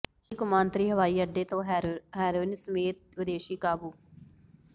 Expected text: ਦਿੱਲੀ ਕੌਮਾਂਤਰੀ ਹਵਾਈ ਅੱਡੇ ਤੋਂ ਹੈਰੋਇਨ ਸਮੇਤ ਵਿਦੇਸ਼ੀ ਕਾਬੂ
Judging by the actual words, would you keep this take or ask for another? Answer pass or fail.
pass